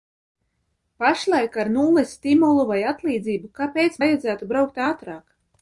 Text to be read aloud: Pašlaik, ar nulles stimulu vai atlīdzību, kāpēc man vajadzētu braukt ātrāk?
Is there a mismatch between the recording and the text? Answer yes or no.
yes